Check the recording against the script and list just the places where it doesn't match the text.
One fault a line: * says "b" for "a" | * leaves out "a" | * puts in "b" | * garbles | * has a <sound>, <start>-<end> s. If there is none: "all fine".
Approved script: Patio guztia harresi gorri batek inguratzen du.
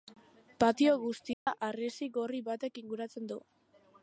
* has a dropout, 1.3-1.5 s